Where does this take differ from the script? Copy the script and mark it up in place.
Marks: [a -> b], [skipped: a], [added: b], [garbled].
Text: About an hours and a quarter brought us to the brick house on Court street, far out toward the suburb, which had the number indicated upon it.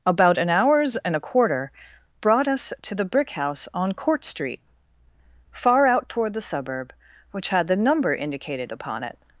About an hours and a quarter brought us to the brick house on Court street, far out toward the suburb, which had the number indicated upon it.